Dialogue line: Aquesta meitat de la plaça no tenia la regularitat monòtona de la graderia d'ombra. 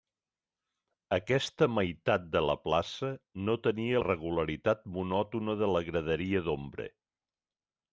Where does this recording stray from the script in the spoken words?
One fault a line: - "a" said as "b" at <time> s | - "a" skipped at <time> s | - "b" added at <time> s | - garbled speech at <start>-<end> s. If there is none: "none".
- "la" skipped at 4.0 s